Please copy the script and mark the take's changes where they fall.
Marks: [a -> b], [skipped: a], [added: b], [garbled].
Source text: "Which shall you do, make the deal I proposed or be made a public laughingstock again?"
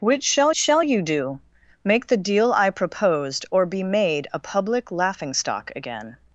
"Which shall [added: shall] you do, make the deal I proposed or be made a public laughingstock again?"